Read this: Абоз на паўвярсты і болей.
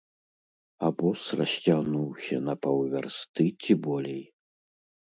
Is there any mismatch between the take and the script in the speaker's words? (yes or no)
yes